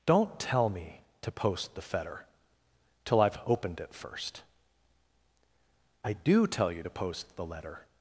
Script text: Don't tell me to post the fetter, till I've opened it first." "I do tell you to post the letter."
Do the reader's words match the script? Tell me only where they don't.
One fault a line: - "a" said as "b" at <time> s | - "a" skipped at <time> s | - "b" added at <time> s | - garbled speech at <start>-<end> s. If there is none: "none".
none